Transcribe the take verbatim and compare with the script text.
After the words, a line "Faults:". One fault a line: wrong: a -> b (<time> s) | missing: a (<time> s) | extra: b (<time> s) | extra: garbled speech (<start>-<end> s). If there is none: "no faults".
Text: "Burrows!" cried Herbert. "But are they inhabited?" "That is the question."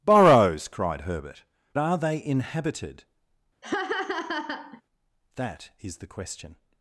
"Burrows!" cried Herbert. "Are they inhabited?" "That is the question."
Faults:
missing: But (1.4 s)